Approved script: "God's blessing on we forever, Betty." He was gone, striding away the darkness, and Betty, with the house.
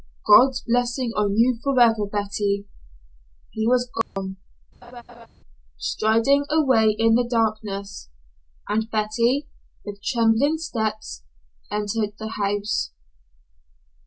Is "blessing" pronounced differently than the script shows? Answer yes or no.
no